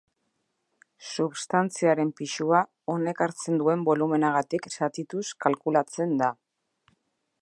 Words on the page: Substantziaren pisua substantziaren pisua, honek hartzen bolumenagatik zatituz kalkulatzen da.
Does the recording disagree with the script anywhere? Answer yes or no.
yes